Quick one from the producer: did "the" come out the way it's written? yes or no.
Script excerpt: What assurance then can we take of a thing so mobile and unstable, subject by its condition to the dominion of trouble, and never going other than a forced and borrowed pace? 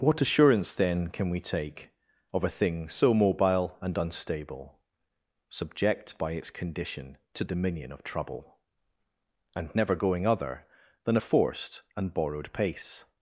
no